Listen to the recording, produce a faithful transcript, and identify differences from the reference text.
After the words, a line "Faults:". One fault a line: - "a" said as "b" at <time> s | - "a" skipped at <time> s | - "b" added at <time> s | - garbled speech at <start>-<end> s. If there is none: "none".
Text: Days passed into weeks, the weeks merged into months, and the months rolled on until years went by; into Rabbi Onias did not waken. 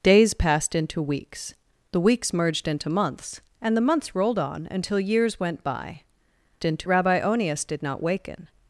Days passed into weeks, the weeks merged into months, and the months rolled on until years went by; into Rabbi Onias did not waken.
Faults:
none